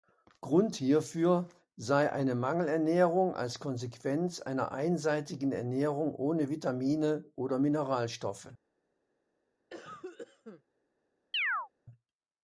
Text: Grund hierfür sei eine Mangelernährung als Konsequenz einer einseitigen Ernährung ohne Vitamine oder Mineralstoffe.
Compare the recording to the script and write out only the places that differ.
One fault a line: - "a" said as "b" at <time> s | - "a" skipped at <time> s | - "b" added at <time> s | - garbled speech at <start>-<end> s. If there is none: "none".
none